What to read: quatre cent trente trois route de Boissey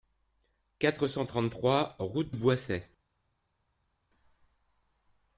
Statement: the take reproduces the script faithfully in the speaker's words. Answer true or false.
false